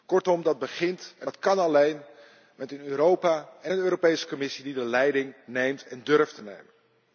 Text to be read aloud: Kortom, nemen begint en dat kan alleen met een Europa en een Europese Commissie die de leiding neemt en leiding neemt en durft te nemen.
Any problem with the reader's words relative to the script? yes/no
yes